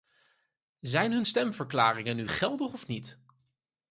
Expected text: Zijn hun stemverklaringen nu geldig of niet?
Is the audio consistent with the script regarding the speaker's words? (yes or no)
yes